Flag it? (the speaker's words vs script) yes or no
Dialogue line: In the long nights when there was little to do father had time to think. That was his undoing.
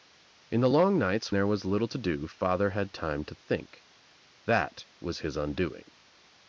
yes